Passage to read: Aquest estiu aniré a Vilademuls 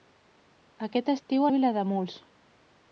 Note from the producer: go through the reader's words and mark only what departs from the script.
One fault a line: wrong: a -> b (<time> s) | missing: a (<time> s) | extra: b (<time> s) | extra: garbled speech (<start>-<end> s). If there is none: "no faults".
missing: aniré (1.4 s)